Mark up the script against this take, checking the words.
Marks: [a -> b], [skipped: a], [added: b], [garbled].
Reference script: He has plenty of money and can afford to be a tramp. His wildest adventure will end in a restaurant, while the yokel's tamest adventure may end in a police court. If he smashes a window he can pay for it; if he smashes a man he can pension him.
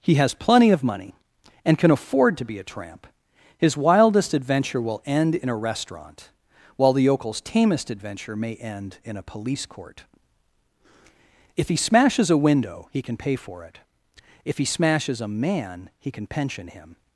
He has plenty of money and can afford to be a tramp. His wildest adventure will end in a restaurant, while the yokel's tamest adventure may end in a police court. If he smashes a window he can pay for it; if he smashes a man he can pension him.